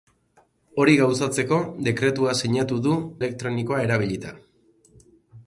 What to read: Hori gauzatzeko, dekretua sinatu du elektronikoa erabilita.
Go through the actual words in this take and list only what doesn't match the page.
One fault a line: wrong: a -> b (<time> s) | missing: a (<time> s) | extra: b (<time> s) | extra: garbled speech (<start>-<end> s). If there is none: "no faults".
no faults